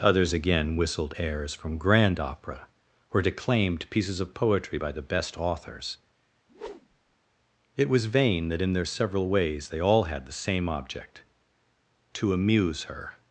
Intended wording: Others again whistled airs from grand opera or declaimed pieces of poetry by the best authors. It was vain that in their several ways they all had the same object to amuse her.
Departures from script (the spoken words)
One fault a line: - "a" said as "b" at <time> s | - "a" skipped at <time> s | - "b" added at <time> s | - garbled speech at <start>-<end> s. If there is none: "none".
none